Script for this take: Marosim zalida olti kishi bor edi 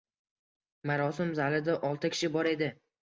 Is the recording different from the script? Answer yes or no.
no